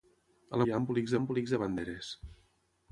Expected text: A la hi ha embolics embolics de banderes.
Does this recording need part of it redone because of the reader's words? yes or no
no